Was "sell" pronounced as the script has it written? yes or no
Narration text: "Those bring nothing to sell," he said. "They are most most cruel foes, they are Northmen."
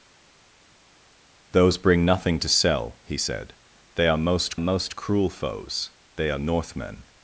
yes